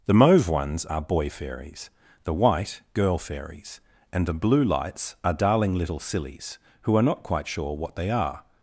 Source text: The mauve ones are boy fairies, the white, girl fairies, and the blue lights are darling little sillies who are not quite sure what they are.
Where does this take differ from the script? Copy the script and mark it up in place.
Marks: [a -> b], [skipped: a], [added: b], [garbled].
The mauve ones are boy fairies, the white, girl fairies, and the blue lights are darling little sillies who are not quite sure what they are.